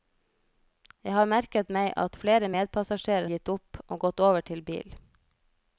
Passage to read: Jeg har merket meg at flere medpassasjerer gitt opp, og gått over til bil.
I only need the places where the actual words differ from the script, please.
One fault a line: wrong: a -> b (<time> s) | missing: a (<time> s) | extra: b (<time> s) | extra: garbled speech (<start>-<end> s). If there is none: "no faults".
no faults